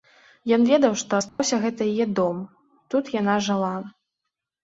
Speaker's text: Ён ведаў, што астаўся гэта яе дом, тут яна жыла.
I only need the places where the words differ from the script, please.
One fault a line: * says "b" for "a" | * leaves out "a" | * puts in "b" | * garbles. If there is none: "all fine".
all fine